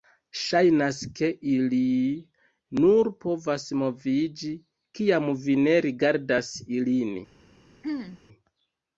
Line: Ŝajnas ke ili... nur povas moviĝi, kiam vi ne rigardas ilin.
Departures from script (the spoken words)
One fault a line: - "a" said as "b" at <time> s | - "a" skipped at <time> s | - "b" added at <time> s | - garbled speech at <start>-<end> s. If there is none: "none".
none